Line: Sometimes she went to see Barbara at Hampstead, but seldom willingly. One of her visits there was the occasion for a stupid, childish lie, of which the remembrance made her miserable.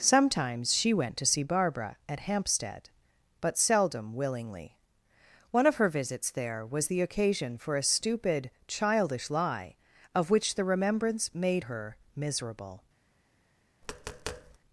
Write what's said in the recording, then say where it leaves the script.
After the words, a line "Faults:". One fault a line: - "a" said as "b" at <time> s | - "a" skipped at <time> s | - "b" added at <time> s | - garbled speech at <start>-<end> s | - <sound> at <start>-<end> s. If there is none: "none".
Sometimes she went to see Barbara at Hampstead, but seldom willingly. One of her visits there was the occasion for a stupid, childish lie, of which the remembrance made her miserable.
Faults:
- tap at 13.8-14.6 s